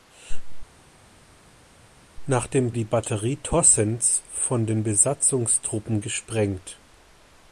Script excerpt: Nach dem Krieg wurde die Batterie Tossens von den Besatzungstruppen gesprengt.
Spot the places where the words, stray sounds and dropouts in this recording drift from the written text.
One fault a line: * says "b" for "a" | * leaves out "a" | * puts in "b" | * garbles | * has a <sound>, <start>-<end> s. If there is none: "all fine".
* leaves out "Krieg wurde"